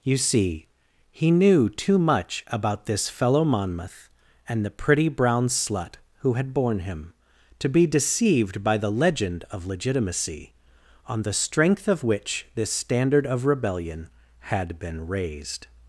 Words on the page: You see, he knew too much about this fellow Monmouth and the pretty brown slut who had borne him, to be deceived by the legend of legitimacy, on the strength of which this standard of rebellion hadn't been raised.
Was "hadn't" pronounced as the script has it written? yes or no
no